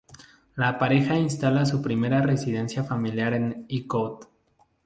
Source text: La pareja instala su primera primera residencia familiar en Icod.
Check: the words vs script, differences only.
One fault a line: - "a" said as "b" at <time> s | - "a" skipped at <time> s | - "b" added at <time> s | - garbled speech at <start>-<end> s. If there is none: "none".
- "primera" skipped at 2.2 s